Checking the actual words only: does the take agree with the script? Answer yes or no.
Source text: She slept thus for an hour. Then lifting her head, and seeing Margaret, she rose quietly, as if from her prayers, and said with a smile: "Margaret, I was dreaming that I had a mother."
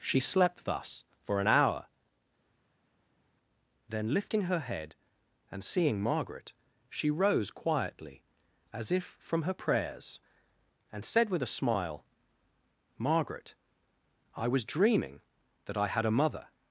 yes